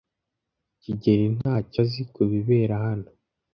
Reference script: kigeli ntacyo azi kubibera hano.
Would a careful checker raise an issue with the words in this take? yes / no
no